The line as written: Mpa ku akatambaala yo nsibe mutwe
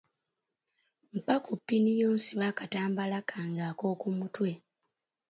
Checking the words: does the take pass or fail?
fail